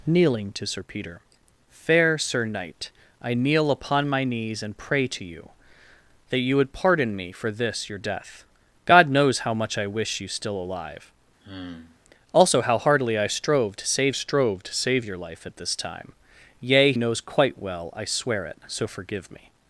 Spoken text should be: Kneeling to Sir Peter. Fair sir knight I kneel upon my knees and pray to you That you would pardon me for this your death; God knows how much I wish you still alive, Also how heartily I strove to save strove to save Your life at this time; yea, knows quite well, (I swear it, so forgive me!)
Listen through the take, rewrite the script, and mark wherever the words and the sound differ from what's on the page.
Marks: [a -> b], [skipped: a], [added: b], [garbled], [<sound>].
Kneeling to Sir Peter. Fair sir knight I kneel upon my knees and pray to you That you would pardon me for this your death; God knows how much I wish you still alive, [sigh] Also how heartily I strove to save strove to save Your life at this time; yea, knows quite well, (I swear it, so forgive me!)